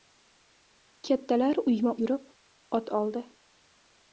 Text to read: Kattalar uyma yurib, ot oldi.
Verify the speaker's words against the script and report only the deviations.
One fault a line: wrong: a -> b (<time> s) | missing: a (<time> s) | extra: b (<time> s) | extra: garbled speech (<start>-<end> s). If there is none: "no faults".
no faults